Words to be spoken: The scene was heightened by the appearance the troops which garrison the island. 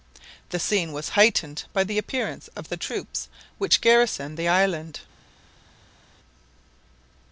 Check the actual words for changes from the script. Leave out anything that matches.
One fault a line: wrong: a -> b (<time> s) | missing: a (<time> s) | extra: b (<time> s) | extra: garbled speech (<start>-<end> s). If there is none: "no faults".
extra: of (2.5 s)